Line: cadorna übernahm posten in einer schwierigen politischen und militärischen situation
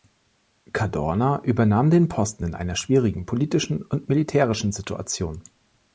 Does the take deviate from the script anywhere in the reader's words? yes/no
yes